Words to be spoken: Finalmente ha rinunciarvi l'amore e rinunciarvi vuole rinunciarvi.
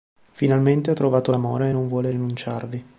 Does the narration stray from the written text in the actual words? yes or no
yes